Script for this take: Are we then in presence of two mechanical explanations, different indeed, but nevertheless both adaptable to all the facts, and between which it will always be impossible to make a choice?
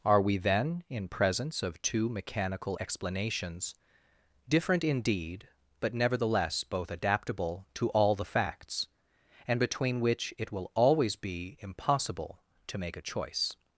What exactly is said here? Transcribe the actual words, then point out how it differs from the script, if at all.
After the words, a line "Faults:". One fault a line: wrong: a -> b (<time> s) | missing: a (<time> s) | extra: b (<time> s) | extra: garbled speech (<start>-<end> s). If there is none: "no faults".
Are we then in presence of two mechanical explanations, different indeed, but nevertheless both adaptable to all the facts, and between which it will always be impossible to make a choice?
Faults:
no faults